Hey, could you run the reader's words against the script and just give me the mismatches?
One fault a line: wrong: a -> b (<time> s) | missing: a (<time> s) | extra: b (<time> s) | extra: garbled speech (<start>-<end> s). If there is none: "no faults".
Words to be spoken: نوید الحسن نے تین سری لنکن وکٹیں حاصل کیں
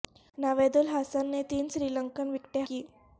missing: حاصل (2.6 s)